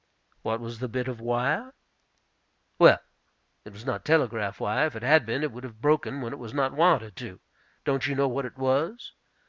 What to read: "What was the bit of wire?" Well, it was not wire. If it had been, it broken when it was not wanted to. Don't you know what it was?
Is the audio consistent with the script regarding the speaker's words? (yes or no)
no